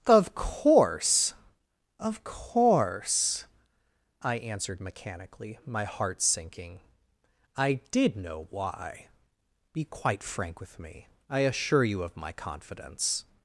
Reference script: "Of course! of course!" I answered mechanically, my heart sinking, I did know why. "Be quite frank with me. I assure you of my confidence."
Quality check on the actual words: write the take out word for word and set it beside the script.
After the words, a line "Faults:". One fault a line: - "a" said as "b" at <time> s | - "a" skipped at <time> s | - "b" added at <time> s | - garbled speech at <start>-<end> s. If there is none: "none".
"Of course! of course!" I answered mechanically, my heart sinking, I did know why. "Be quite frank with me. I assure you of my confidence."
Faults:
none